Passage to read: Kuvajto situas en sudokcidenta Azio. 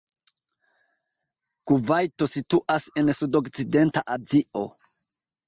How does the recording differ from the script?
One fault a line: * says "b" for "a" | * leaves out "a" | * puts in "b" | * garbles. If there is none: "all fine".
all fine